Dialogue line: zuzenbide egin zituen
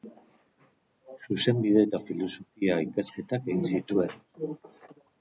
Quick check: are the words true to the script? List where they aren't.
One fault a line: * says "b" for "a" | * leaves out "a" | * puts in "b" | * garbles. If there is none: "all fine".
* puts in "eta filosofia ikasketak"